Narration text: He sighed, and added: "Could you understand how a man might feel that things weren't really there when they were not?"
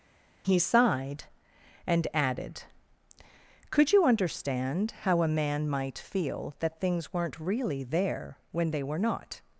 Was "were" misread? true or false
false